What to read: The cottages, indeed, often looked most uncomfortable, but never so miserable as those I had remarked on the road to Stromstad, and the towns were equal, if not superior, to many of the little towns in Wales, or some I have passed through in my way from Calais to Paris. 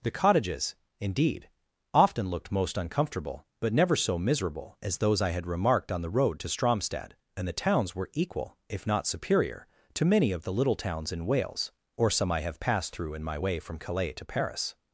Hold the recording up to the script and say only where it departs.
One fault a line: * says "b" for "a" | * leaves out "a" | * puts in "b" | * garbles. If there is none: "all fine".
all fine